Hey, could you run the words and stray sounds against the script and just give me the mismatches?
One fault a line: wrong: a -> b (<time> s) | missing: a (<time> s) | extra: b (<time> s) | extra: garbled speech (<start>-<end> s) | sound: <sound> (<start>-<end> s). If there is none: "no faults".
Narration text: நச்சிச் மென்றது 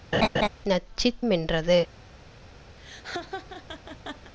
sound: laugh (0.1-0.5 s)
sound: laugh (2.8-4.3 s)